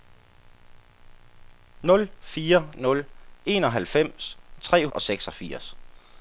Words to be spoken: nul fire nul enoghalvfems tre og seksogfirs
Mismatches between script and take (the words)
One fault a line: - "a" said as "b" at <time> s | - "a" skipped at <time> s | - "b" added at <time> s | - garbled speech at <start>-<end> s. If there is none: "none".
none